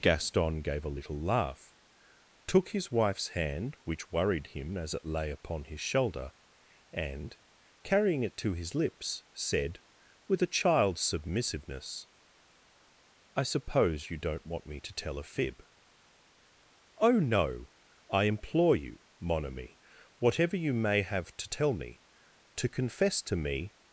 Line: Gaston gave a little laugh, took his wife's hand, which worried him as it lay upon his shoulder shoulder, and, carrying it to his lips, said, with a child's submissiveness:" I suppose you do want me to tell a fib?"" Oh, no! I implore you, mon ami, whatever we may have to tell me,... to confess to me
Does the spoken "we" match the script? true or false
false